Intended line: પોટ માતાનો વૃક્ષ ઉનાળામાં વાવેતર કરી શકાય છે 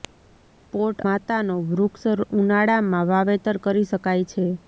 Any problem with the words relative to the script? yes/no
no